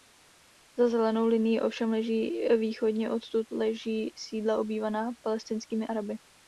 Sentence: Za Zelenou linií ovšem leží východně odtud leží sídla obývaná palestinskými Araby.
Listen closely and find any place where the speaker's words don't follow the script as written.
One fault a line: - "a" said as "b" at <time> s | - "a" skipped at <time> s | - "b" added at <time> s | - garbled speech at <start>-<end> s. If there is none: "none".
none